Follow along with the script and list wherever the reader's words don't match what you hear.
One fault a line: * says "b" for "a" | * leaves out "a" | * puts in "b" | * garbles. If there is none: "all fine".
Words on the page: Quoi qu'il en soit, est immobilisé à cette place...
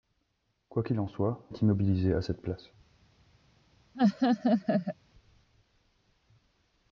all fine